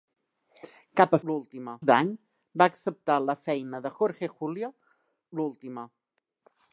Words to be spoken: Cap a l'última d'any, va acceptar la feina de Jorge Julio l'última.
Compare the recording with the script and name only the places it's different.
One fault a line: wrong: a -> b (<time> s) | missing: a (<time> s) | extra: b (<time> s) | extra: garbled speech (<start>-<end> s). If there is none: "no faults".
no faults